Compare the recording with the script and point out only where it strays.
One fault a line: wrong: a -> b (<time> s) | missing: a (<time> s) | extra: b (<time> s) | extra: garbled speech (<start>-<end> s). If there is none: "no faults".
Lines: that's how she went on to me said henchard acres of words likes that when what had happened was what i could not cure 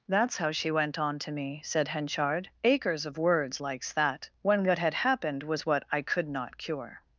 no faults